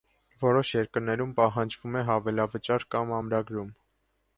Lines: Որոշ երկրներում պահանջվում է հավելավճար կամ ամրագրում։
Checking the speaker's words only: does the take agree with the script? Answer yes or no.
yes